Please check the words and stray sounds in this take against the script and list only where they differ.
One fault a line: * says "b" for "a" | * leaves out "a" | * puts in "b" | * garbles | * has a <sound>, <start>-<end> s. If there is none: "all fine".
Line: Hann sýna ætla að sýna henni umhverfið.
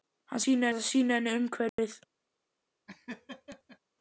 * has a dropout, 1.7-1.8 s
* has a laugh, 2.9-3.8 s